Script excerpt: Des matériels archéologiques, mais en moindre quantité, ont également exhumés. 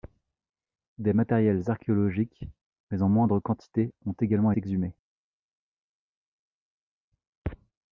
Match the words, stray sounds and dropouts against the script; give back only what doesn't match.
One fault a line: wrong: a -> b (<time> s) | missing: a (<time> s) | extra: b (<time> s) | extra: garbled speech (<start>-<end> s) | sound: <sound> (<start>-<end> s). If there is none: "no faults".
no faults